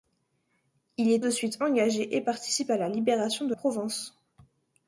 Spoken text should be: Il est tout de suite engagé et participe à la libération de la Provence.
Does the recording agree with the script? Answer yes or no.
no